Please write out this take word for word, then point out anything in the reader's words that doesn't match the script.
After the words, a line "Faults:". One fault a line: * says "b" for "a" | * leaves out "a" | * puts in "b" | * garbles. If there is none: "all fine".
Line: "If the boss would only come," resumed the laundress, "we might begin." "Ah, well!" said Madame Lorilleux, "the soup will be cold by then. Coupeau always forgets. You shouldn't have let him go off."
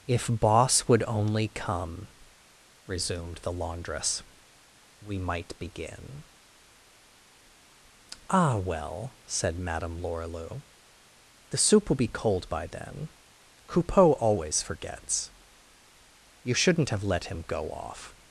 "If boss would only come," resumed the laundress, "we might begin." "Ah, well!" said Madame Lorilleux, "the soup will be cold by then. Coupeau always forgets. You shouldn't have let him go off."
Faults:
* leaves out "the"